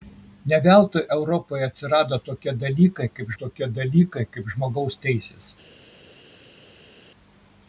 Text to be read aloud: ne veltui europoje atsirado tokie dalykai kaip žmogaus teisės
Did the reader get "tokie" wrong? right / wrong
right